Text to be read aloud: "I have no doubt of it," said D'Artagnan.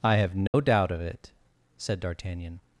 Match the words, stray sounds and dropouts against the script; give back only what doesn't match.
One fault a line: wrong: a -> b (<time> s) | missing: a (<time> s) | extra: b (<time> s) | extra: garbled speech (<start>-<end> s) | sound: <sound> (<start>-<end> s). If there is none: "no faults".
sound: dropout (0.5-0.5 s)